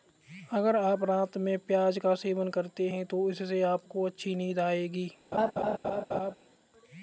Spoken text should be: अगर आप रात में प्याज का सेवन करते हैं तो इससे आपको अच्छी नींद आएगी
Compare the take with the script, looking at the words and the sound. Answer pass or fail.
fail